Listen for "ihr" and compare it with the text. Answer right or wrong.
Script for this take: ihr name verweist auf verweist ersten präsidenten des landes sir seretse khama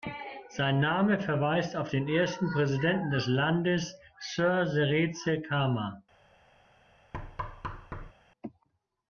wrong